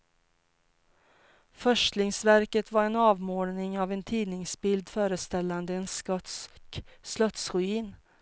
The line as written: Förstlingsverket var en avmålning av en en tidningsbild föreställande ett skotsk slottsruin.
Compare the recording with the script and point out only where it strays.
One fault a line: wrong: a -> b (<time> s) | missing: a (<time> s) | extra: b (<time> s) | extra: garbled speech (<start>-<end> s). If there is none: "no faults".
missing: en (4.0 s)
wrong: ett -> en (5.7 s)